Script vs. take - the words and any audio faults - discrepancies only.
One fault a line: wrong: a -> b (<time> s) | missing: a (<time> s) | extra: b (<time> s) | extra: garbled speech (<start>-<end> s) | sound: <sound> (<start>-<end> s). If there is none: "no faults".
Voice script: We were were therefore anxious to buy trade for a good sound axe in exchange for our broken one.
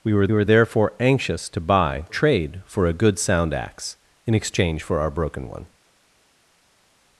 no faults